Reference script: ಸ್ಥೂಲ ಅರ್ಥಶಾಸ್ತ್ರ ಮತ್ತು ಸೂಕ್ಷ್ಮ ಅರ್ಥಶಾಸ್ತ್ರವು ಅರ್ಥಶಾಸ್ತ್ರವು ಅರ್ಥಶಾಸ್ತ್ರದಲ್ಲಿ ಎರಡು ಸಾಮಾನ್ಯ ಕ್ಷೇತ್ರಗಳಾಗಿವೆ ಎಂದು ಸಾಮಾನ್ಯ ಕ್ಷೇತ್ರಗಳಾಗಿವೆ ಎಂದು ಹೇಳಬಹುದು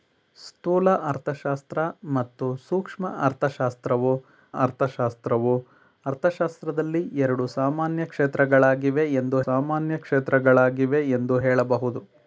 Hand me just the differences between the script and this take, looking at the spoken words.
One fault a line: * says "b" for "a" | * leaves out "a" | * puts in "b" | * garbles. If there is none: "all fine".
all fine